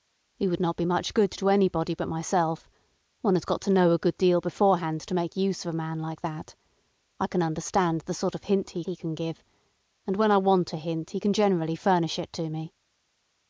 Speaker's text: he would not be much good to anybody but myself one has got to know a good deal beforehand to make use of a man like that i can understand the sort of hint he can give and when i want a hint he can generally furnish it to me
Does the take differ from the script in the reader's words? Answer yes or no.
yes